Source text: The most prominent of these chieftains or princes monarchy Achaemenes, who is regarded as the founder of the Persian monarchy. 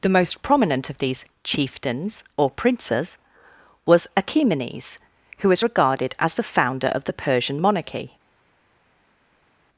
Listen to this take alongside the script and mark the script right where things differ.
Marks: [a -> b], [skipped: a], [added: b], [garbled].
The most prominent of these chieftains or princes [monarchy -> was] Achaemenes, who is regarded as the founder of the Persian monarchy.